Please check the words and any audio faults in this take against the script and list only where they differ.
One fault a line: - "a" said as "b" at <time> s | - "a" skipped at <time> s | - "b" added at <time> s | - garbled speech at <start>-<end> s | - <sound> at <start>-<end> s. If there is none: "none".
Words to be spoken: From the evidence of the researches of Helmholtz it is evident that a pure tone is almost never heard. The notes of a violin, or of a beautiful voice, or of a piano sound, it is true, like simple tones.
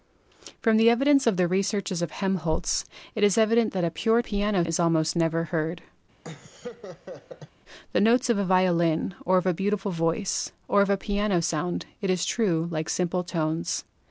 - "tone" said as "piano" at 4.2 s
- laugh at 6.2-7.5 s